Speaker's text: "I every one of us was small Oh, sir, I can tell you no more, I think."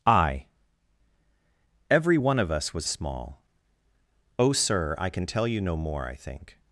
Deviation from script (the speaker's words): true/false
false